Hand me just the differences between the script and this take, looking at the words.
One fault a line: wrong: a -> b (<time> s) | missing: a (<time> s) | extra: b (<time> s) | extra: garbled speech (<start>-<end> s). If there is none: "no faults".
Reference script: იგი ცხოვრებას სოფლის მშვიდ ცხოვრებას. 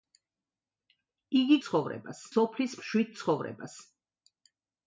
no faults